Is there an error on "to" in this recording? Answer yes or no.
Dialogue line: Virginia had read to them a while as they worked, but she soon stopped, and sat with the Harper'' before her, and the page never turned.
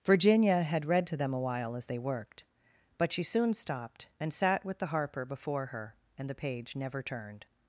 no